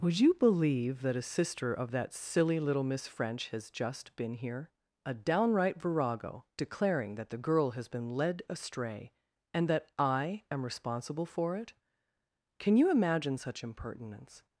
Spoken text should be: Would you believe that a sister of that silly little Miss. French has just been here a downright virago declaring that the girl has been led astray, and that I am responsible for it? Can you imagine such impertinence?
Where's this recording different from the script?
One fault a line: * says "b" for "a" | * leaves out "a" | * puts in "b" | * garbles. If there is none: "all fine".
all fine